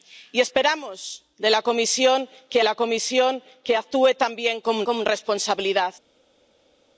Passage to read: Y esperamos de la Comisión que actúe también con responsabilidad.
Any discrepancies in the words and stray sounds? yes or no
yes